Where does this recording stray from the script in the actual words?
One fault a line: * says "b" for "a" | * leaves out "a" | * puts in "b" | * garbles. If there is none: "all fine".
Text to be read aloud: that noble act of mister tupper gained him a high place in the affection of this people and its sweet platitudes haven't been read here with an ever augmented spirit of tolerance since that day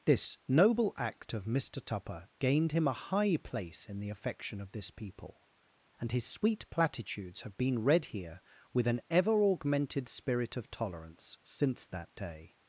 * says "this" for "that"
* says "his" for "its"
* says "have" for "haven't"